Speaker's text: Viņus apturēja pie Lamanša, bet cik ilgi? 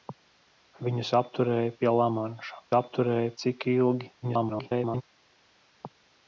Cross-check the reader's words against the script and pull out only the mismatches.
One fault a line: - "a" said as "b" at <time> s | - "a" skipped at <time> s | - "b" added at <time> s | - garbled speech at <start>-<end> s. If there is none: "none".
- "bet" said as "apturēja" at 2.8 s
- garbled speech at 4.2-5.0 s